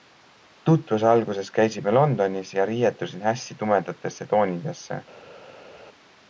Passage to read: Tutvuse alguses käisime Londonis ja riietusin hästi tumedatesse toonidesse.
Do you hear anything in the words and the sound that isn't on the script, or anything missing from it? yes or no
no